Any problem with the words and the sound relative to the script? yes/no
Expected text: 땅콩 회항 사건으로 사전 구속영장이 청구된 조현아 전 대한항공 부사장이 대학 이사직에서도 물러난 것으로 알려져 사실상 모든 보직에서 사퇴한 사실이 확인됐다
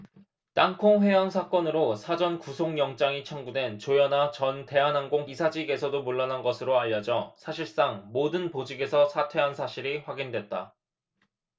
yes